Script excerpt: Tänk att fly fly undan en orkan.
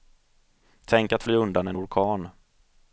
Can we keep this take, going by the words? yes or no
no